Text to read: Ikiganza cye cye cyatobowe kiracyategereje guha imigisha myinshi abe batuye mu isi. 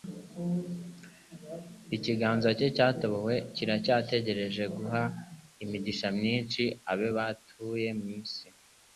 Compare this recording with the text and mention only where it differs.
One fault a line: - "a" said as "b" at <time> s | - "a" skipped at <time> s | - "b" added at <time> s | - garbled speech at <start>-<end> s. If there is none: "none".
- "cye" skipped at 2.7 s